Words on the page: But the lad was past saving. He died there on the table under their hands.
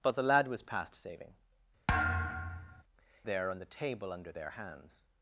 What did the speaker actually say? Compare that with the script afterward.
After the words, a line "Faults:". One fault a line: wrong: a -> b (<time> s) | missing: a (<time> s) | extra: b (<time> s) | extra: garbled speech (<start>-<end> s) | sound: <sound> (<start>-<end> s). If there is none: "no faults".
But the lad was past saving. There on the table under their hands.
Faults:
missing: He died (1.4 s)
sound: thud (1.9-2.8 s)